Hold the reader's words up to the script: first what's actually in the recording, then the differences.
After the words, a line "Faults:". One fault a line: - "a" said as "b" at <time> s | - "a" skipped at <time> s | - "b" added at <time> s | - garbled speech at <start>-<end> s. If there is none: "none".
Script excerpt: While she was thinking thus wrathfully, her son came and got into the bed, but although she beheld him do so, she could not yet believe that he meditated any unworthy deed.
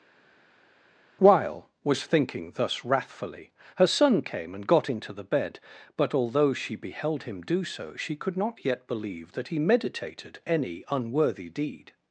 While was thinking thus wrathfully, her son came and got into the bed, but although she beheld him do so, she could not yet believe that he meditated any unworthy deed.
Faults:
- "she" skipped at 1.7 s